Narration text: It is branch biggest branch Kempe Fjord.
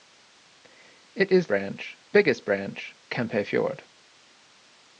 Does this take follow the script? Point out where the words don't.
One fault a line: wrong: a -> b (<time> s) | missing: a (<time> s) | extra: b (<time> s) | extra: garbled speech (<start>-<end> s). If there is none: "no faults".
no faults